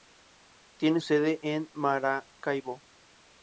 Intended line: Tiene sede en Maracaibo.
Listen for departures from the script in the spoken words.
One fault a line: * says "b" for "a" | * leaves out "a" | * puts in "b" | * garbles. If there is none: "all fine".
all fine